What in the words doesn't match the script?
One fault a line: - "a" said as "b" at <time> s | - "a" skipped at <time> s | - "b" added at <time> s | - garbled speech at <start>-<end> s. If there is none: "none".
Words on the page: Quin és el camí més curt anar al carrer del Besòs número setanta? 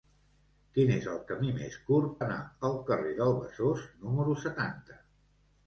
none